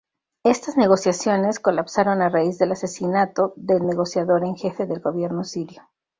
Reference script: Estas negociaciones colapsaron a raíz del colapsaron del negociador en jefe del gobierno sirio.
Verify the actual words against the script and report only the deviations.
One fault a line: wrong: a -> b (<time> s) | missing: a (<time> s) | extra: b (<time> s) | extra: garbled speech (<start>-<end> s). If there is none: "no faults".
wrong: colapsaron -> asesinato (2.7 s)